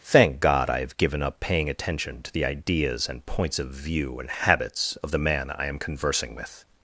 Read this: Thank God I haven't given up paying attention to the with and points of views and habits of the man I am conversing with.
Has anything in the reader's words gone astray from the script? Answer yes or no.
yes